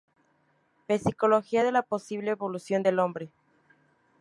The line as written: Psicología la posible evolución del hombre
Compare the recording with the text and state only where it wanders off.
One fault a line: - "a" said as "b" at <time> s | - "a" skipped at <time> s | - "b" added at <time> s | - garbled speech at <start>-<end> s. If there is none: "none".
- "de" added at 1.6 s